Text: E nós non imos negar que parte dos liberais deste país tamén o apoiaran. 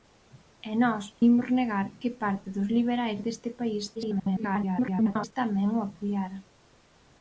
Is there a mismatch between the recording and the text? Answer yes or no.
yes